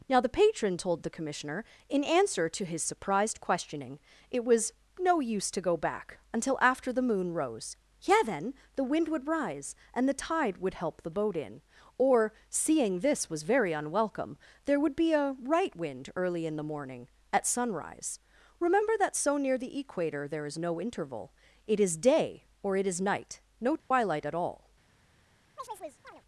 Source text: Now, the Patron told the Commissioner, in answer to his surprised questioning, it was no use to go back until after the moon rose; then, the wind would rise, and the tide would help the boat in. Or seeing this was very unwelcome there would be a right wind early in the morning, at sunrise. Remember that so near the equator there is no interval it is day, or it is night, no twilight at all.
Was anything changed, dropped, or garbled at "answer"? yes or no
no